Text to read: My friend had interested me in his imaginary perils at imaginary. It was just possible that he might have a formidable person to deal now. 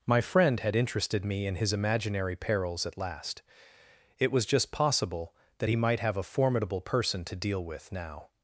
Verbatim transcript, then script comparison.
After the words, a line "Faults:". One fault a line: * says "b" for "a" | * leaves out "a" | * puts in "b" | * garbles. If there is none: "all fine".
My friend had interested me in his imaginary perils at last. It was just possible that he might have a formidable person to deal with now.
Faults:
* says "last" for "imaginary"
* puts in "with"